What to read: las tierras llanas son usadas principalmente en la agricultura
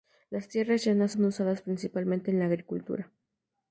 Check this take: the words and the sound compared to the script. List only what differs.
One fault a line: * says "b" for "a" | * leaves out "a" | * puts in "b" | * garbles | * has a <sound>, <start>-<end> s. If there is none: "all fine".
all fine